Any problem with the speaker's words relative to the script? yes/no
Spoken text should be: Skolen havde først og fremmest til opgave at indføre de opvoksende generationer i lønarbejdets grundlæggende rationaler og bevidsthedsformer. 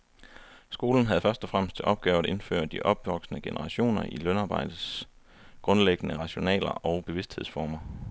no